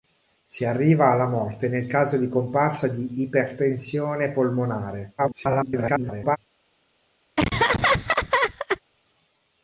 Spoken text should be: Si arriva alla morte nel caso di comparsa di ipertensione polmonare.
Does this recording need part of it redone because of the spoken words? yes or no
yes